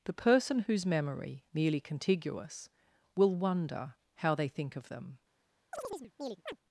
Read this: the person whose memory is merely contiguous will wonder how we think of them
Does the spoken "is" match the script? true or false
false